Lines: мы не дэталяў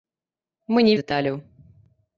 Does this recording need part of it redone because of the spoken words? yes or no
no